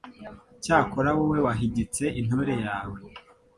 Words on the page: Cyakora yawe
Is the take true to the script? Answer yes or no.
no